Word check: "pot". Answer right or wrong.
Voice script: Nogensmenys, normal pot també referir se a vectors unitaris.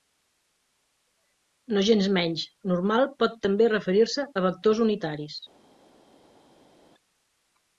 right